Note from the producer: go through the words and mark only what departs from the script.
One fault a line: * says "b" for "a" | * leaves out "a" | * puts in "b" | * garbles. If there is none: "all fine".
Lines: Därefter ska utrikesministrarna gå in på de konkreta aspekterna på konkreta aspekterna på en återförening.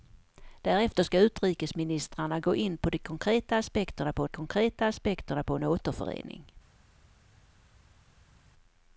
all fine